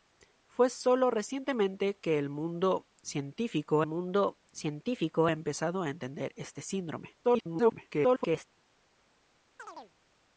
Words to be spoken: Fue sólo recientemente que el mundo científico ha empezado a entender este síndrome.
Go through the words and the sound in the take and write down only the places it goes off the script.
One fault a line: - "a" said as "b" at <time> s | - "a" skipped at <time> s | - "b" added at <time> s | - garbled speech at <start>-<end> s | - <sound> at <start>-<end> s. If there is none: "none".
- "mundo científico" added at 3.9 s
- garbled speech at 7.2-8.5 s
- chirp at 9.6-9.9 s